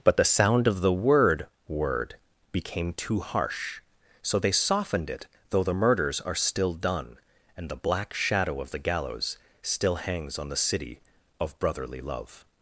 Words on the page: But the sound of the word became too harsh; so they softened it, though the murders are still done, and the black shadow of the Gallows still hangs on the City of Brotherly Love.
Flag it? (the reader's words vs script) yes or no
yes